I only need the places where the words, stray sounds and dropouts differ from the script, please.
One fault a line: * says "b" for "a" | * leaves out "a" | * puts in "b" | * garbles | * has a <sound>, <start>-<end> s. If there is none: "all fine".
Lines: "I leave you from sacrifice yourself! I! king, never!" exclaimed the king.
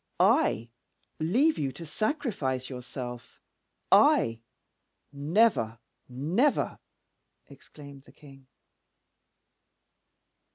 * says "to" for "from"
* says "never" for "king"